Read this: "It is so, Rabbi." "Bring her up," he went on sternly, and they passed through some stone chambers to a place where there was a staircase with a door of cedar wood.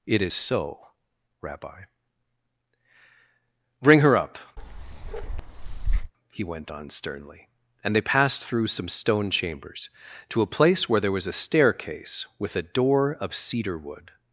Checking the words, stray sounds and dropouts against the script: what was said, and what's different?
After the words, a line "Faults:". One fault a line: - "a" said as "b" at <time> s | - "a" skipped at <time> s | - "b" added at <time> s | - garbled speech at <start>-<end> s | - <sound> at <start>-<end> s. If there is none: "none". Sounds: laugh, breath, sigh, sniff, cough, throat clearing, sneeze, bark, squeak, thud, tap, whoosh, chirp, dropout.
"It is so, Rabbi." "Bring her up," he went on sternly, and they passed through some stone chambers to a place where there was a staircase with a door of cedar wood.
Faults:
- bark at 4.6-6.1 s